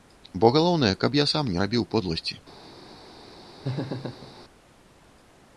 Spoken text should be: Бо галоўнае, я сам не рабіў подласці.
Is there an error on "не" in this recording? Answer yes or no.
no